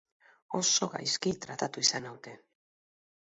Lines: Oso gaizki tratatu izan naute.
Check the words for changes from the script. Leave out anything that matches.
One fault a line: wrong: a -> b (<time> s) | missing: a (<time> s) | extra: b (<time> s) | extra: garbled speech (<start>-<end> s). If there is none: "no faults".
no faults